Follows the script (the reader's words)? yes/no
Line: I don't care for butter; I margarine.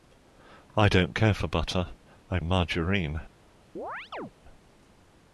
yes